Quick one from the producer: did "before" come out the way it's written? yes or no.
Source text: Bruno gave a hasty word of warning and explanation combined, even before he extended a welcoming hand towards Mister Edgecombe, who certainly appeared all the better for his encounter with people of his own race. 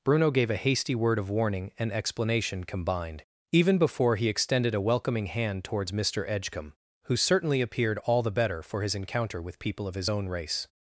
yes